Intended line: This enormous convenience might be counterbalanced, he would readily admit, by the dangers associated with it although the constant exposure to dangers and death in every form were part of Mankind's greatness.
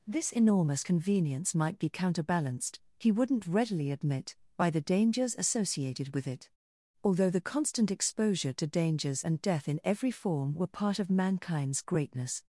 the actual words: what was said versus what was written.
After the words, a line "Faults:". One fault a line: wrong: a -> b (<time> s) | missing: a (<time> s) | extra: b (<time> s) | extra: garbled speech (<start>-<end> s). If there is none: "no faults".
This enormous convenience might be counterbalanced, he wouldn't readily admit, by the dangers associated with it although the constant exposure to dangers and death in every form were part of Mankind's greatness.
Faults:
wrong: would -> wouldn't (3.1 s)